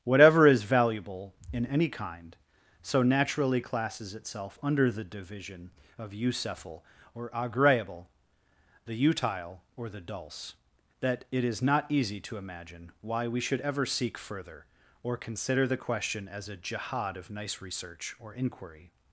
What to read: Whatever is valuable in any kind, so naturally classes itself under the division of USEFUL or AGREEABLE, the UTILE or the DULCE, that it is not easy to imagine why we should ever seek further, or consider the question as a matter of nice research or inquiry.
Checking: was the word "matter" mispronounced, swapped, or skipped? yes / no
yes